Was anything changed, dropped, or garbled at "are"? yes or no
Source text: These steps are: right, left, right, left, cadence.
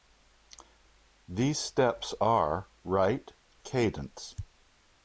no